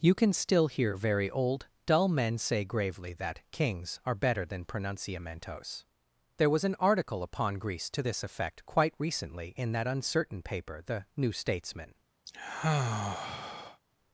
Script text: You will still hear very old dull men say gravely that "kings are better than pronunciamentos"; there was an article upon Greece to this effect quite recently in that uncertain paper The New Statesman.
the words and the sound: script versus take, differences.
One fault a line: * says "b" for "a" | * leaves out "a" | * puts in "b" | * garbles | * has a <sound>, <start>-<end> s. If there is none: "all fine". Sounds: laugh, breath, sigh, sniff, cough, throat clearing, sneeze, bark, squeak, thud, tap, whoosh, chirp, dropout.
* says "can" for "will"
* has a sigh, 12.3-13.8 s